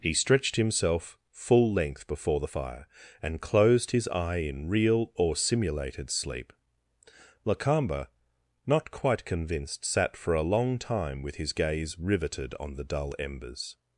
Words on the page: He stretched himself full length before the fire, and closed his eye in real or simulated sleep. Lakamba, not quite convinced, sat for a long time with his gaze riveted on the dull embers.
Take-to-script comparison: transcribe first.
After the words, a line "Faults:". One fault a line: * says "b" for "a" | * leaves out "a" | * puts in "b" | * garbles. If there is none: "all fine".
He stretched himself full length before the fire, and closed his eye in real or simulated sleep. Lakamba, not quite convinced, sat for a long time with his gaze riveted on the dull embers.
Faults:
all fine